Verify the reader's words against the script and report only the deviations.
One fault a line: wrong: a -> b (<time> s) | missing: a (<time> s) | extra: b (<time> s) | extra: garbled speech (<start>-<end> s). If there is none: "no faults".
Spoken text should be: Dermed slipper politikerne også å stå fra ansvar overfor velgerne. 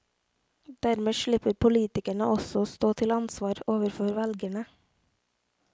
wrong: fra -> til (3.0 s)